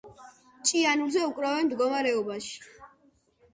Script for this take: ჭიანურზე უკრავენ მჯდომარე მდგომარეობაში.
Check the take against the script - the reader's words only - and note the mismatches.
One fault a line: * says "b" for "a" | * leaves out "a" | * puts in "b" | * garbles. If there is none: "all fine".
* leaves out "მჯდომარე"